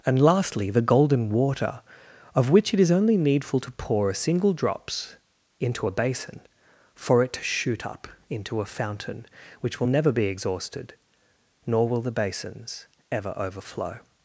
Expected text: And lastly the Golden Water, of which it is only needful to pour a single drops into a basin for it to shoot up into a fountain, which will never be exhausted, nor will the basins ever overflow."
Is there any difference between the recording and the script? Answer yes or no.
no